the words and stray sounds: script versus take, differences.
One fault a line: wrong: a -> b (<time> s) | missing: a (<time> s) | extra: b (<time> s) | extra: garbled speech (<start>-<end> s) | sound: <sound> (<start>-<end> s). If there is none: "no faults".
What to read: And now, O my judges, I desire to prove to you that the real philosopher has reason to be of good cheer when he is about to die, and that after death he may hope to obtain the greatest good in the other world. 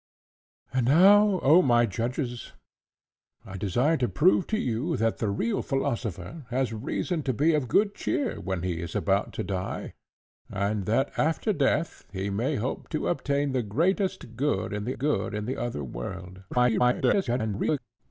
extra: good in the (15.0 s)
extra: garbled speech (16.5-17.8 s)